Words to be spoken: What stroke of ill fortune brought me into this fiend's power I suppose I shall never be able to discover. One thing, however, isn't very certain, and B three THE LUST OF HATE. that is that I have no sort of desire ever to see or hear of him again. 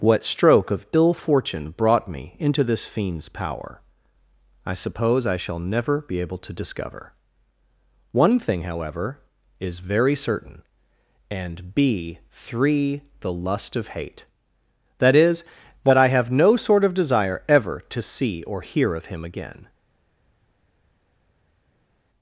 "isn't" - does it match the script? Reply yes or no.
no